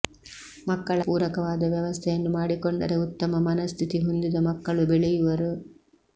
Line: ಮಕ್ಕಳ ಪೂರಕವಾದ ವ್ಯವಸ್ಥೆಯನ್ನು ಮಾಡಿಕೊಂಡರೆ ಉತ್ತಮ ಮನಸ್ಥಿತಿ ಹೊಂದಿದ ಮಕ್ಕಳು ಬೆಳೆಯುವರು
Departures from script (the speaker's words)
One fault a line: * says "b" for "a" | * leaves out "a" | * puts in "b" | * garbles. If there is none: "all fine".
all fine